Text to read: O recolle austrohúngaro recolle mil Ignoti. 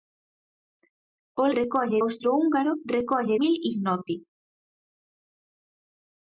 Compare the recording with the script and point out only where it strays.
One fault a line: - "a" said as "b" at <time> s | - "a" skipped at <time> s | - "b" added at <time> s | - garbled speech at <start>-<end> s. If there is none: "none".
none